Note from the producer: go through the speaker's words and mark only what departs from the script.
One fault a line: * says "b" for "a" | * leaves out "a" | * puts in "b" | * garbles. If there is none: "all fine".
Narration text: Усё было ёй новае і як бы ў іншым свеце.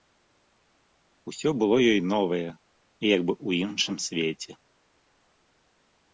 all fine